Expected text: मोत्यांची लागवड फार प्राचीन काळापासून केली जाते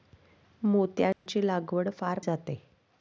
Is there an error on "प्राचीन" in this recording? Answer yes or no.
yes